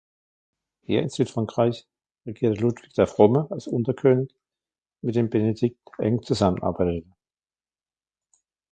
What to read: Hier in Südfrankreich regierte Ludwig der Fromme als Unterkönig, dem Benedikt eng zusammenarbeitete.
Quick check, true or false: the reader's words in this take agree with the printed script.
false